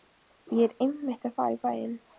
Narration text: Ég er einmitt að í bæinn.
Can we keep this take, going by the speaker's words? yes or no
no